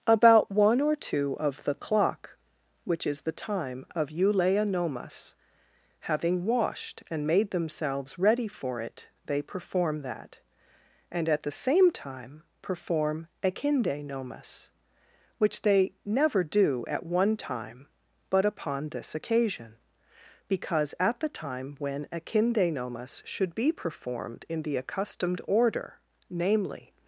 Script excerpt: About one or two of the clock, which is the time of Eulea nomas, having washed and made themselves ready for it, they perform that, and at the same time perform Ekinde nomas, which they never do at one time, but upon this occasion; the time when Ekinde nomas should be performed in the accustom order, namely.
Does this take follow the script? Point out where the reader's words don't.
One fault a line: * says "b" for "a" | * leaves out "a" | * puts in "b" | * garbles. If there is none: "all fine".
* puts in "because at"
* says "accustomed" for "accustom"